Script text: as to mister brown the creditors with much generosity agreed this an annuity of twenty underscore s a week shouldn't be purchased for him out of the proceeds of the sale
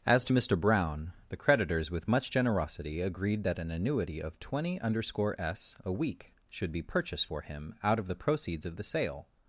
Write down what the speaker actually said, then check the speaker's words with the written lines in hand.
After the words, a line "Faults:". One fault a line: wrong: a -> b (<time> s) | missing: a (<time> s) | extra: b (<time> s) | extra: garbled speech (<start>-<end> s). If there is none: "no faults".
as to mister brown the creditors with much generosity agreed that an annuity of twenty underscore s a week should be purchased for him out of the proceeds of the sale
Faults:
wrong: this -> that (3.4 s)
wrong: shouldn't -> should (6.5 s)